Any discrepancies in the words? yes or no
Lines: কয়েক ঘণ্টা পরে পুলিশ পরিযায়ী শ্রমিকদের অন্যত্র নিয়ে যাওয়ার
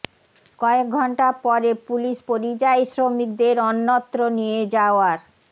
no